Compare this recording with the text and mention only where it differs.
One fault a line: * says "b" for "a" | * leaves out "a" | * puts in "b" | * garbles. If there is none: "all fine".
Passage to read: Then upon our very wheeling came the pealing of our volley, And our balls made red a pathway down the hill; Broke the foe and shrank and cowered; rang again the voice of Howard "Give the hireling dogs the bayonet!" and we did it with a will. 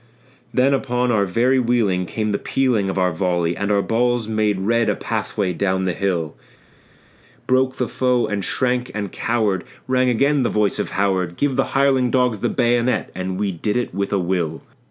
all fine